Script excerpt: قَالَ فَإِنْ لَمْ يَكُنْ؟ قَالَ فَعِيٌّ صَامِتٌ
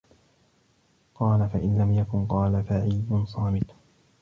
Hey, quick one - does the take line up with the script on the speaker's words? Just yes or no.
yes